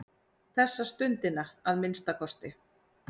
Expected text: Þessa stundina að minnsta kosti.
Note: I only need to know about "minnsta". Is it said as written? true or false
true